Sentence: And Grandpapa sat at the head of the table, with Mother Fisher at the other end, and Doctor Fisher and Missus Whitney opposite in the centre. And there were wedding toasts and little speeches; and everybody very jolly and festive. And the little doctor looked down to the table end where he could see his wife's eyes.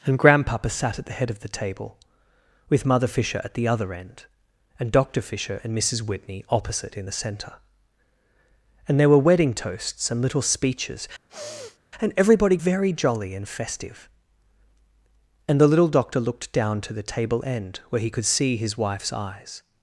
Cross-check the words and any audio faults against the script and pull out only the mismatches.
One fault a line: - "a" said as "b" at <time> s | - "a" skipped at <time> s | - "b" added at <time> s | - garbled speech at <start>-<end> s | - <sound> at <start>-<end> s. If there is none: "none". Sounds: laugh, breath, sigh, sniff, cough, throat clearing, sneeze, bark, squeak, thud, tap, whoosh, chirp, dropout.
- sniff at 11.3-11.8 s